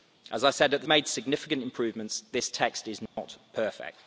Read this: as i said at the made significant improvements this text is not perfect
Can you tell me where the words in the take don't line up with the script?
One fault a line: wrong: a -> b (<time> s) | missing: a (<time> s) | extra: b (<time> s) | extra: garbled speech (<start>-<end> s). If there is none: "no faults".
no faults